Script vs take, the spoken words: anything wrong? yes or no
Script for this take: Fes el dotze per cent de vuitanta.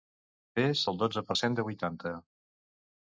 no